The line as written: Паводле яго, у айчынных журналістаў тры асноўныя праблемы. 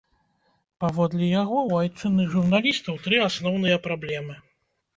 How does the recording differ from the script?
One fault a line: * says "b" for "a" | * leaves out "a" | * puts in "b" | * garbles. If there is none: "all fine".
all fine